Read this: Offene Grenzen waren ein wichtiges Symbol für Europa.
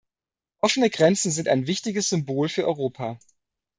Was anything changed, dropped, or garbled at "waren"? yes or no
yes